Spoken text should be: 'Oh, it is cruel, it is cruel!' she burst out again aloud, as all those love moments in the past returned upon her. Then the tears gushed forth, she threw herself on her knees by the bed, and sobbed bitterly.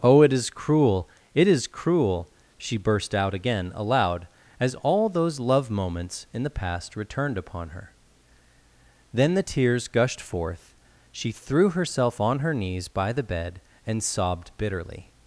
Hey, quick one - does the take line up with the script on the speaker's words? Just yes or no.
yes